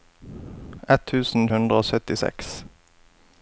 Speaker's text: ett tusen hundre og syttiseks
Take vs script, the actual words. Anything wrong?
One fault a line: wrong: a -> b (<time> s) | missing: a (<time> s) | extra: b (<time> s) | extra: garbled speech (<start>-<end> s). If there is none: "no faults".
no faults